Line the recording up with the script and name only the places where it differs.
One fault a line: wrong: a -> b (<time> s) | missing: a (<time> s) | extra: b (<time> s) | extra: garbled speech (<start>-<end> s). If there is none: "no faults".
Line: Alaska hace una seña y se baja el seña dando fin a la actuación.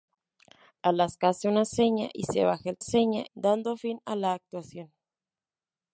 no faults